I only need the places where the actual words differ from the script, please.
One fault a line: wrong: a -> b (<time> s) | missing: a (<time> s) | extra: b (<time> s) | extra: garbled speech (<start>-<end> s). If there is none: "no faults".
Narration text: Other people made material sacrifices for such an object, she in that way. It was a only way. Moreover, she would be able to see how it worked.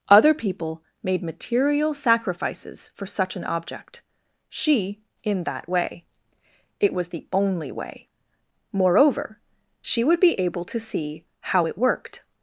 wrong: a -> the (7.1 s)